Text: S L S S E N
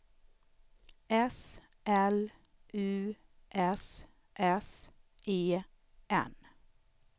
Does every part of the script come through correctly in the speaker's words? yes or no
no